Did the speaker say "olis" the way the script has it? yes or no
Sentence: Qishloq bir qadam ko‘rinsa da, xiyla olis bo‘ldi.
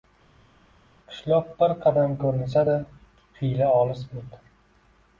yes